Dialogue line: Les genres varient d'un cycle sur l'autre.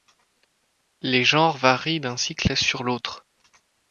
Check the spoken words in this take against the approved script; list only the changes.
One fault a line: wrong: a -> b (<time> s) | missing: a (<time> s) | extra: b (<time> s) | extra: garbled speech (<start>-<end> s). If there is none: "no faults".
no faults